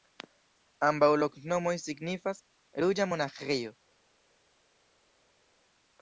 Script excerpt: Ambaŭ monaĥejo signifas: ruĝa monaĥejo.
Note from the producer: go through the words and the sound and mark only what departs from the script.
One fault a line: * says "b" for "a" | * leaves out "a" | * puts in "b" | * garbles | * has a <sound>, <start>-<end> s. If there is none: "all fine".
* says "loknomoj" for "monaĥejo"